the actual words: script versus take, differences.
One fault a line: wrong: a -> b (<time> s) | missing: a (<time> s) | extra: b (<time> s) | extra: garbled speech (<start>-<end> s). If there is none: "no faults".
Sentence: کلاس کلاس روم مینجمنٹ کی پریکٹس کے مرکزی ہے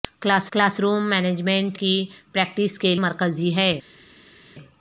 no faults